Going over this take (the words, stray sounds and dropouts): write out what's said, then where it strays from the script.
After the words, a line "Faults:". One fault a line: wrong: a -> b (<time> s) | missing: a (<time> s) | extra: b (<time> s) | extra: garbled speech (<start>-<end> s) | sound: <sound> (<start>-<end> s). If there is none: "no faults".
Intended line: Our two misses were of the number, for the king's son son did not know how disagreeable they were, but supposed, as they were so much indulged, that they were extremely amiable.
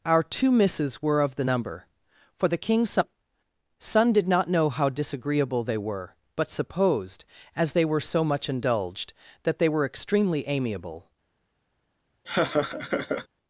Our two misses were of the number, for the king's son son did not know how disagreeable they were, but supposed, as they were so much indulged, that they were extremely amiable.
Faults:
sound: laugh (12.2-13.3 s)